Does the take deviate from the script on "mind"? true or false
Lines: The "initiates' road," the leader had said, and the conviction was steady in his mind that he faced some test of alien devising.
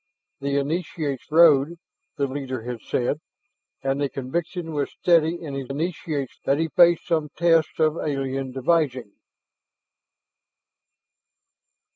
true